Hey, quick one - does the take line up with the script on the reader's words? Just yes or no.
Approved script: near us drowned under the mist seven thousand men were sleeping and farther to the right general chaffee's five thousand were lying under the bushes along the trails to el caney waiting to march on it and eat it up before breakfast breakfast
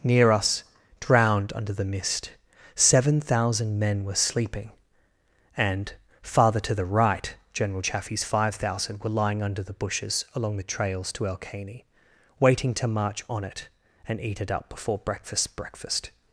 yes